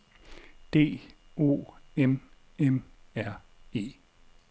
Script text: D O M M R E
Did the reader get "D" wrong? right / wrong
right